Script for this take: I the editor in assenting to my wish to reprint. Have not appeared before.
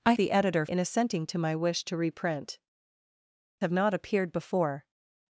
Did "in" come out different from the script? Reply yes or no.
no